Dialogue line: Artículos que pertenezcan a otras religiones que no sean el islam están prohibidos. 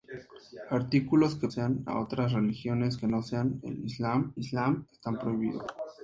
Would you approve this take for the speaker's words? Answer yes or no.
no